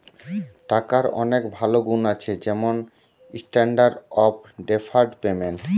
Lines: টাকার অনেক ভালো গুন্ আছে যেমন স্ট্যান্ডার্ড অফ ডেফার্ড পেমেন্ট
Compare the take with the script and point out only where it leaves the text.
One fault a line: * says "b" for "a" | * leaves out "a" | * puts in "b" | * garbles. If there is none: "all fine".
all fine